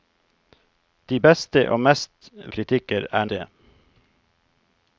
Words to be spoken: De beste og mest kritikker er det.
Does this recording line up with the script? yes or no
yes